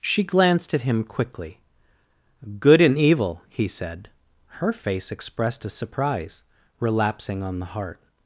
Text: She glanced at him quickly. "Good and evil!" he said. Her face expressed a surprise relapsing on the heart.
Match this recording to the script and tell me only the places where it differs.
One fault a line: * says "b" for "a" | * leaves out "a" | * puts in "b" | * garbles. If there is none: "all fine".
all fine